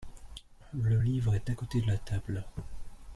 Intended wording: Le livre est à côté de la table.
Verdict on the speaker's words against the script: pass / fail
pass